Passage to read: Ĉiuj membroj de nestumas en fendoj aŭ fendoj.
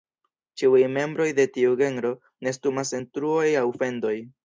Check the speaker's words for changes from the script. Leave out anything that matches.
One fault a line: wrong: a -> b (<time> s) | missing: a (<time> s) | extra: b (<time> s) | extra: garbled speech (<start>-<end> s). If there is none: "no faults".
extra: tiu genro (1.6 s)
wrong: fendoj -> truoj (3.2 s)